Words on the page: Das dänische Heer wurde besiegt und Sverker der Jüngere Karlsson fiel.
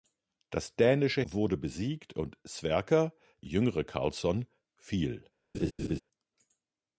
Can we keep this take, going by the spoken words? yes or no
no